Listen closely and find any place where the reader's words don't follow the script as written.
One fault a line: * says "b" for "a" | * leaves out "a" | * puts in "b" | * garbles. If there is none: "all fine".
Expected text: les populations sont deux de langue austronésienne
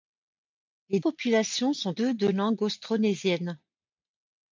all fine